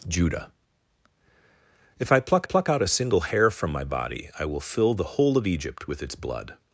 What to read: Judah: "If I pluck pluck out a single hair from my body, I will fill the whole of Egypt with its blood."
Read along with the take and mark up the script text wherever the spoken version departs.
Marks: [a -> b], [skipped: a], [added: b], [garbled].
Judah: "If I pluck pluck out a single hair from my body, I will fill the whole of Egypt with its blood."